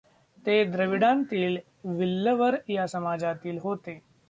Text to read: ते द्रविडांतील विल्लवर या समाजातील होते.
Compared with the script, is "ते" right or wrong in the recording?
right